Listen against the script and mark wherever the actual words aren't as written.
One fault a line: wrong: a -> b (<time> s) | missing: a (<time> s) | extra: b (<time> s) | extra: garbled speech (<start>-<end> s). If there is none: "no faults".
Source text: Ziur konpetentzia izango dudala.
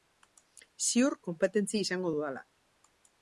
no faults